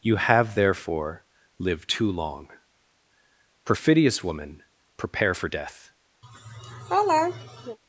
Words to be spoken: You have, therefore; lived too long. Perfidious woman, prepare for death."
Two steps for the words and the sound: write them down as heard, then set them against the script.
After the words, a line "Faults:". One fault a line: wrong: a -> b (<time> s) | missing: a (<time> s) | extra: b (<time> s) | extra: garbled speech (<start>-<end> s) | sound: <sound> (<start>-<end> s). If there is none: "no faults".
You have, therefore; lived too long. Perfidious woman, prepare for death."
Faults:
sound: laugh (6.2-7.8 s)